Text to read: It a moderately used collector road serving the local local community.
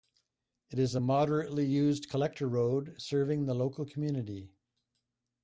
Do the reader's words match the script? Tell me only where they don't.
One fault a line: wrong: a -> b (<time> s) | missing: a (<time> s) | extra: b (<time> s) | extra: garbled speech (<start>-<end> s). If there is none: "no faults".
extra: is (0.8 s)
missing: local (3.9 s)